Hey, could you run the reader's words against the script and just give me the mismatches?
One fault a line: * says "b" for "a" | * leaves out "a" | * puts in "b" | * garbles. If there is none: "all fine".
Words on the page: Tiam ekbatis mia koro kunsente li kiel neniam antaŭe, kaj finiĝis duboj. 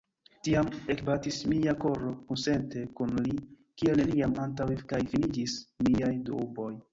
* puts in "kun"
* puts in "miaj"